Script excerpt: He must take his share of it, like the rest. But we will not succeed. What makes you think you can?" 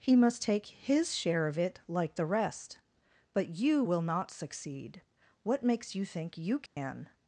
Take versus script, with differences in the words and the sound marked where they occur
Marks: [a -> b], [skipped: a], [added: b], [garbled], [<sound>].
He must take his share of it, like the rest. But [we -> you] will not succeed. What makes you think you can?" [dropout]